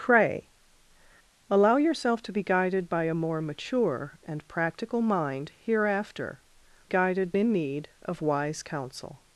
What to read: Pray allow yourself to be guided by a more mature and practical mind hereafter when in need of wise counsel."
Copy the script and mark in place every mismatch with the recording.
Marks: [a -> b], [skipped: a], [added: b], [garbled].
Pray allow yourself to be guided by a more mature and practical mind hereafter [when -> guided] in need of wise counsel."